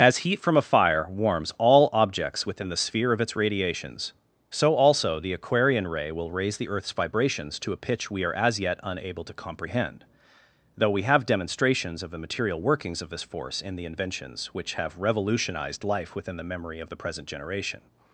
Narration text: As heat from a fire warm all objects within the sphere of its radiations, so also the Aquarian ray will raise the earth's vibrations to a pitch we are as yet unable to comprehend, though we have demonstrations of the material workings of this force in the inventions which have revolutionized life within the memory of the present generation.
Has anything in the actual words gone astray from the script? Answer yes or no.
yes